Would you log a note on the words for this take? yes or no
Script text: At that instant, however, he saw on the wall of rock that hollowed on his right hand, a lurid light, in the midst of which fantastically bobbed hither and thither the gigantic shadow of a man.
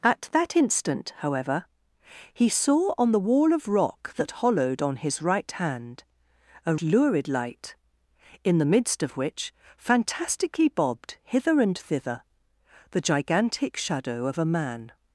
no